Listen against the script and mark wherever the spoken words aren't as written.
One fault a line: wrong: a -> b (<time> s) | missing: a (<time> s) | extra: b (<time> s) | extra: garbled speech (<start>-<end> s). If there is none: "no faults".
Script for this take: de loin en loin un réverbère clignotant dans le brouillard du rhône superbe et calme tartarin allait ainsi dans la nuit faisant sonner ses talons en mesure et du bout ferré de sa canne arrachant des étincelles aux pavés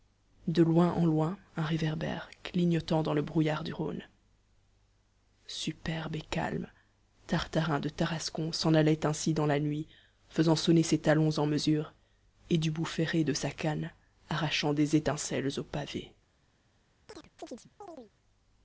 extra: de tarascon s'en (7.8 s)